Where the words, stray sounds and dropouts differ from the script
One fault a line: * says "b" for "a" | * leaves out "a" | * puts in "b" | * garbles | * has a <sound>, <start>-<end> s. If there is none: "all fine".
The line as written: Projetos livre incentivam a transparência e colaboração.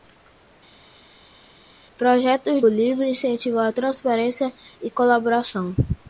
all fine